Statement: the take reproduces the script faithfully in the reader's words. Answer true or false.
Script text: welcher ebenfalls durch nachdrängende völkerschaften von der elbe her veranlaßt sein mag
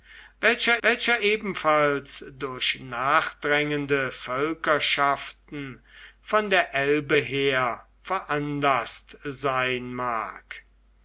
false